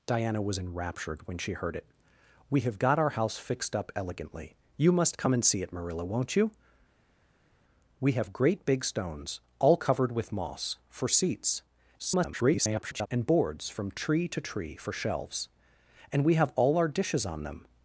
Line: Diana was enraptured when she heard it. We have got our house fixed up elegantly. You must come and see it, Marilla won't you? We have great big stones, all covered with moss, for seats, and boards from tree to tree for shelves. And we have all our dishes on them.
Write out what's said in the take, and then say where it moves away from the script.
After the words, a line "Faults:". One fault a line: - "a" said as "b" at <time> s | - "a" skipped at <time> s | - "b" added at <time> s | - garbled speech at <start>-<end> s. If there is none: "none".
Diana was enraptured when she heard it. We have got our house fixed up elegantly. You must come and see it, Marilla won't you? We have great big stones, all covered with moss, for seats, [garbled] and boards from tree to tree for shelves. And we have all our dishes on them.
Faults:
- garbled speech at 12.0-13.1 s